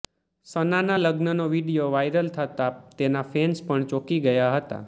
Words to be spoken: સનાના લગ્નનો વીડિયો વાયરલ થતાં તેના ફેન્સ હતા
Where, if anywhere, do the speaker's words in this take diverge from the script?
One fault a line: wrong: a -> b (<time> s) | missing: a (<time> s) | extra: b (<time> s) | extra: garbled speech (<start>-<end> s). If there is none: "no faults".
extra: પણ ચોંકી ગયા (3.6 s)